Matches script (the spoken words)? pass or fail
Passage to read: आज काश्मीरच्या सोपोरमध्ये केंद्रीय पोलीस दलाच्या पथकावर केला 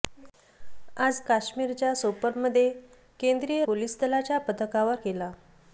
pass